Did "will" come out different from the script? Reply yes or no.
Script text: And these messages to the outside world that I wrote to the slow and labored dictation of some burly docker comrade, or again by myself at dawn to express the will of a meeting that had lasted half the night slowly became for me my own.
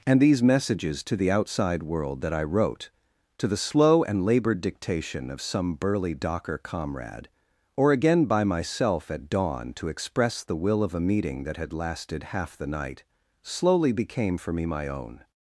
no